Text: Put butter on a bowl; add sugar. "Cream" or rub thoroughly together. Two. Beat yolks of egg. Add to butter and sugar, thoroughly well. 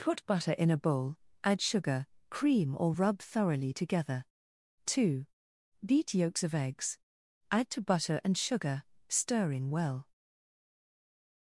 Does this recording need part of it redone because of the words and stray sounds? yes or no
yes